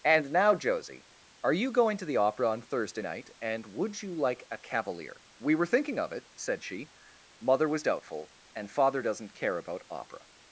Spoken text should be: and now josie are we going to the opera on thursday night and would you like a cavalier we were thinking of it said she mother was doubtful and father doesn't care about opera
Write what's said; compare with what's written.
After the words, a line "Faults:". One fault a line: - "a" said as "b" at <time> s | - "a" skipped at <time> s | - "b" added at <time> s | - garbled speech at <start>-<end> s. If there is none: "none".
and now josie are you going to the opera on thursday night and would you like a cavalier we were thinking of it said she mother was doubtful and father doesn't care about opera
Faults:
- "we" said as "you" at 1.5 s